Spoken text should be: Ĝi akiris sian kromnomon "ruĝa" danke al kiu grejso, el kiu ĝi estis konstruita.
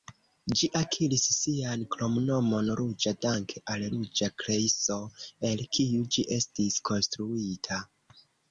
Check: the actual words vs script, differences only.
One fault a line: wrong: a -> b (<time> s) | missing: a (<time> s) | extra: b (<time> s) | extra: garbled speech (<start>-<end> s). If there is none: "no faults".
wrong: kiu -> ruĝa (3.9 s)